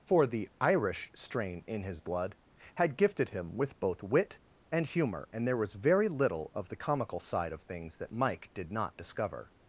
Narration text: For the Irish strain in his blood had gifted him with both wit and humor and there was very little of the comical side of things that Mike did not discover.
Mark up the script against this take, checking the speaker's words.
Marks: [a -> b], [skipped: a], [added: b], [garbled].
For the Irish strain in his blood had gifted him with both wit and humor and there was very little of the comical side of things that Mike did not discover.